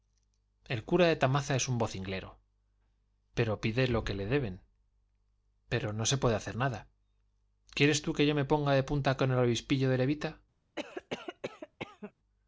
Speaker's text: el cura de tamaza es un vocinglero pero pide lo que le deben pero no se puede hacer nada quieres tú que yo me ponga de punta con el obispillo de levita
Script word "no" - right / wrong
right